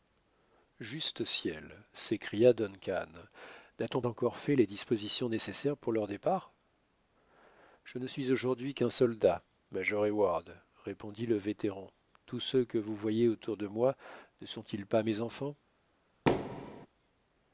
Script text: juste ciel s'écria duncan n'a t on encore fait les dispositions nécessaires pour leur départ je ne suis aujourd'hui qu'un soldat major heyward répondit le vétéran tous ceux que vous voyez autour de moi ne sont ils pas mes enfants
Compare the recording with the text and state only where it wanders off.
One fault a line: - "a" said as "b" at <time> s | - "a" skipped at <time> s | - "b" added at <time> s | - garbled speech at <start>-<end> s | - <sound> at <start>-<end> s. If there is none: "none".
- thud at 16.3-16.9 s